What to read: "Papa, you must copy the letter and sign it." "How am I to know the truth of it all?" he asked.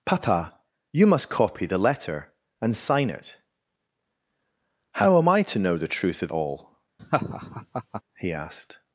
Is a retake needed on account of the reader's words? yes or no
yes